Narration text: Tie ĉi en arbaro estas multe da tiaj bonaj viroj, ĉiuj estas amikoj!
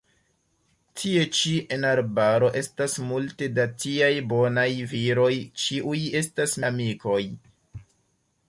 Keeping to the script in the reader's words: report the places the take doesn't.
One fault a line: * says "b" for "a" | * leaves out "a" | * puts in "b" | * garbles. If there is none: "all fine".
all fine